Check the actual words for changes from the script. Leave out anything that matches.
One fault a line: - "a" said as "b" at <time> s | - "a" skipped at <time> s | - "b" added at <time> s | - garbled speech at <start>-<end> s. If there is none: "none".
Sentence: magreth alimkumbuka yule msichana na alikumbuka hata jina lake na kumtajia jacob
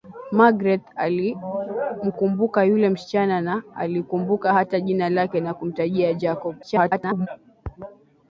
- garbled speech at 6.6-7.3 s